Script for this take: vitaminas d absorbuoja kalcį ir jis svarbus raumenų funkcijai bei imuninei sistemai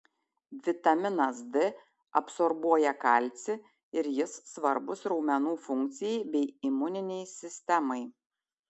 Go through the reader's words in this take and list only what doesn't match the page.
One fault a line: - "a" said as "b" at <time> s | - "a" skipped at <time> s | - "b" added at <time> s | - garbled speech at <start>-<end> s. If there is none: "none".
none